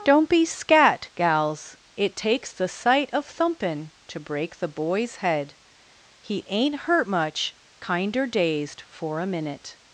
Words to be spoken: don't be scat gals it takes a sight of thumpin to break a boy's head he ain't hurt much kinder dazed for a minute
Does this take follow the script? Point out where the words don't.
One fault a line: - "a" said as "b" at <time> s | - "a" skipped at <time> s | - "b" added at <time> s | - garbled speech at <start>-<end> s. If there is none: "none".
- "a" said as "the" at 2.5 s
- "a" said as "the" at 4.6 s